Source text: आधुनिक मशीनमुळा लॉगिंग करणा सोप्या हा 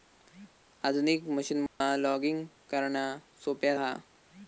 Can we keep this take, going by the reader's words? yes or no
yes